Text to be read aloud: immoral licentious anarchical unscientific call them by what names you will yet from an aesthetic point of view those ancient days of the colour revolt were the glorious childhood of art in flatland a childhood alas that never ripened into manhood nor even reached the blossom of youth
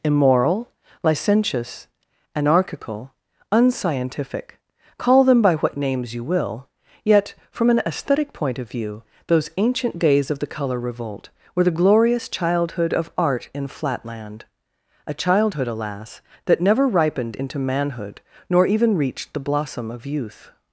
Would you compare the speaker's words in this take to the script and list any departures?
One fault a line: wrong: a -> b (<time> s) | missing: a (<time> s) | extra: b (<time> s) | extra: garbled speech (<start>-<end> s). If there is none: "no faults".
no faults